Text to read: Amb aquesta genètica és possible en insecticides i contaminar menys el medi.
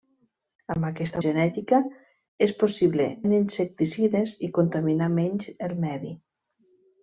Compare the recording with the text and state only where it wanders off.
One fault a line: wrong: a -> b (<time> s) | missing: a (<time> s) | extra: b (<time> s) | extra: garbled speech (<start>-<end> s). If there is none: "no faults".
no faults